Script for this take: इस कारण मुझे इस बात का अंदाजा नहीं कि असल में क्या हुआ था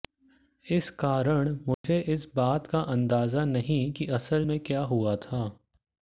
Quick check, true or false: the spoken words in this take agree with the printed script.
true